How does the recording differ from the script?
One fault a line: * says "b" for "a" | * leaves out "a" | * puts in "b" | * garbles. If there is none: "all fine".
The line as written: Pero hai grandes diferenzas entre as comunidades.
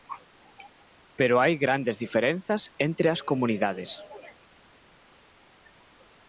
all fine